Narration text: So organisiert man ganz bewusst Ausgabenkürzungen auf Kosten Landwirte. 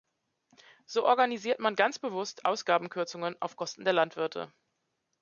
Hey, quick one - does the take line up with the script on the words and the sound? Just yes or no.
no